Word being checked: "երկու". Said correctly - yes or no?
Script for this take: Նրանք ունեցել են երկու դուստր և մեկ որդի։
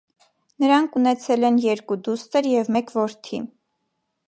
yes